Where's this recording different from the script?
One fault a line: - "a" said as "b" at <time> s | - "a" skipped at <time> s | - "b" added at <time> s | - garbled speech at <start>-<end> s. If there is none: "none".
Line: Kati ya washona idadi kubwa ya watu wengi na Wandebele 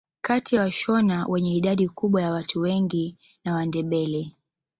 - "wenye" added at 1.3 s